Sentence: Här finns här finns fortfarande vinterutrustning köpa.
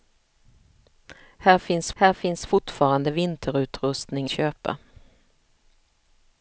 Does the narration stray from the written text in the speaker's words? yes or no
no